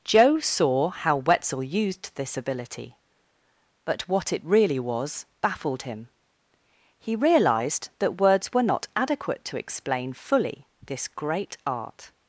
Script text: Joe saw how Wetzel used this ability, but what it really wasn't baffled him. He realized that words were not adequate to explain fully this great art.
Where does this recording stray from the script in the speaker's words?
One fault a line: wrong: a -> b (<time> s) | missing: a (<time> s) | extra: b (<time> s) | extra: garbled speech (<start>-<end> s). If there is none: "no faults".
wrong: wasn't -> was (4.8 s)